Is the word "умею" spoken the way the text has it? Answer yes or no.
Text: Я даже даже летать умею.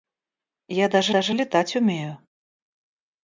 yes